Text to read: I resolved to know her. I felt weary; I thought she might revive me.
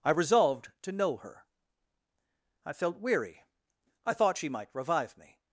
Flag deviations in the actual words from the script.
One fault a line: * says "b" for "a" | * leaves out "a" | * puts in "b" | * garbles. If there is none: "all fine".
all fine